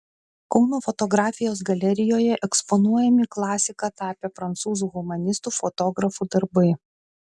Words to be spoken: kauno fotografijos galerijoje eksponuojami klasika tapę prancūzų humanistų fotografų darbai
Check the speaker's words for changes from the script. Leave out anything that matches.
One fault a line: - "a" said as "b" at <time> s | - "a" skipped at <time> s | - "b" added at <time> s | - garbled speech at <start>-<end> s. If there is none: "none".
none